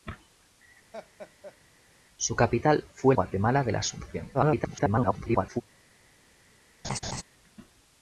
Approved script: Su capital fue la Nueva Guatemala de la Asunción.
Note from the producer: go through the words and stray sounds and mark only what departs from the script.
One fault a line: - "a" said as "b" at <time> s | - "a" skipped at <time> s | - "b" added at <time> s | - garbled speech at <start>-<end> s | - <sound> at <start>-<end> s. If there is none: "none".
- laugh at 0.9-1.6 s
- "la Nueva" skipped at 3.1 s
- garbled speech at 4.3-5.6 s
- laugh at 6.8-7.2 s